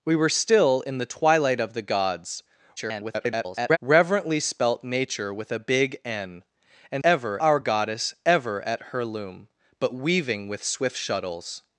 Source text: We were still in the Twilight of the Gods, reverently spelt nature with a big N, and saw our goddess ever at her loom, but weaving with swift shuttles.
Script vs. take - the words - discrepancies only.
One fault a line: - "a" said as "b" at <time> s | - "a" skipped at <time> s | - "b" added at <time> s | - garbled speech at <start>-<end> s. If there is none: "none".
- garbled speech at 2.8-3.8 s
- "saw" said as "ever" at 7.0 s